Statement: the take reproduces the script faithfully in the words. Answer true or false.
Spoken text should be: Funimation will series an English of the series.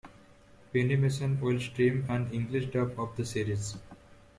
false